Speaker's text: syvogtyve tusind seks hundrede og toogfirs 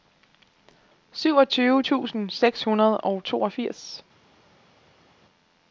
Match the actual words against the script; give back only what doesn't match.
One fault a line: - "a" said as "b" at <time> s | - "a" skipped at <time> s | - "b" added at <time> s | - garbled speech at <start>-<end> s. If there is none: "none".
none